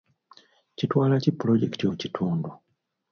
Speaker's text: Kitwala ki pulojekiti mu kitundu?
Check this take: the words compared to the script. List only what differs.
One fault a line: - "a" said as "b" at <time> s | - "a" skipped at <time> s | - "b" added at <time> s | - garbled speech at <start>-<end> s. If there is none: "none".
none